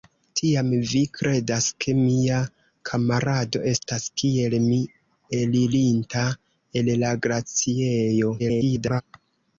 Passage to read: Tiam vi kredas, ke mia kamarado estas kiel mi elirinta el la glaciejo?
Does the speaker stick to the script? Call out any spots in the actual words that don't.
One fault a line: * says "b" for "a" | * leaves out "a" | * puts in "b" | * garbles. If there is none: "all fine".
* garbles